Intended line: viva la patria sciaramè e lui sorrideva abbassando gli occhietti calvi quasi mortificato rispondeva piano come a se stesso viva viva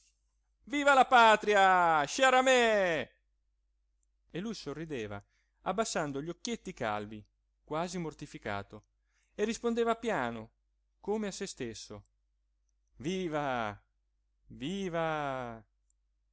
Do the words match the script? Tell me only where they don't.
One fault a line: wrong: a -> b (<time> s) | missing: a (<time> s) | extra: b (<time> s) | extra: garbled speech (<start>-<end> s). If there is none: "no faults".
extra: e (9.3 s)